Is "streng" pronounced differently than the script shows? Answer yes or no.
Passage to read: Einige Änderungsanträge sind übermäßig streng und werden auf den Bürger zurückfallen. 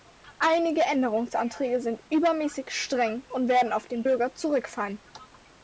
no